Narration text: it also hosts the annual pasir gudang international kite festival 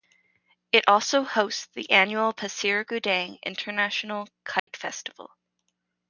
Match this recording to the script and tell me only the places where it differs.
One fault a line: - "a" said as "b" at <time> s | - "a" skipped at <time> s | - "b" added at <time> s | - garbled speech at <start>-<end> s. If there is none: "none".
none